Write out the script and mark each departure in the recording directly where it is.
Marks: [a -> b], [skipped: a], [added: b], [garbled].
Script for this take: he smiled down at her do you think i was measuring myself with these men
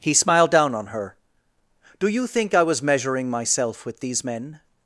he smiled down [at -> on] her do you think i was measuring myself with these men